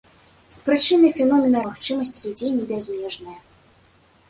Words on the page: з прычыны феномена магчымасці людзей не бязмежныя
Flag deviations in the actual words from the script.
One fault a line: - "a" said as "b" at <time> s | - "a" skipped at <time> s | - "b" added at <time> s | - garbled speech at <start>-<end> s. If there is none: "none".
none